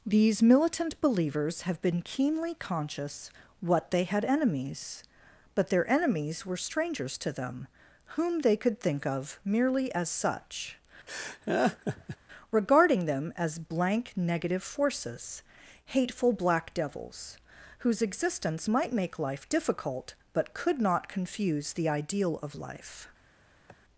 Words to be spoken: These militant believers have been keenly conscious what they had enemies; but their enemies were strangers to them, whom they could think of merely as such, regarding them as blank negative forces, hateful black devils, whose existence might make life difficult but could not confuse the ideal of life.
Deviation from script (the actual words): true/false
false